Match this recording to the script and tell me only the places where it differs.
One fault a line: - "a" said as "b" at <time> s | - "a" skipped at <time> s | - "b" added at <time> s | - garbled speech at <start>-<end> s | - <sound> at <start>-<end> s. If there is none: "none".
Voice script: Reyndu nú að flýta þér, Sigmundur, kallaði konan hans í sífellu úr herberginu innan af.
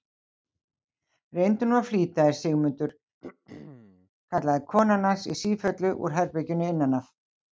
- throat clearing at 3.2-4.1 s